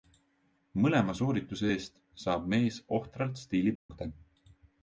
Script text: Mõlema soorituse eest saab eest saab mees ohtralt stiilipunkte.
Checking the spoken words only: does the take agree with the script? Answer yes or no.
no